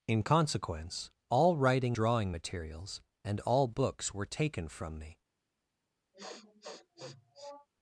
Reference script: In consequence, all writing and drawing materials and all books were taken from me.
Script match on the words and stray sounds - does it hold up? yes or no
no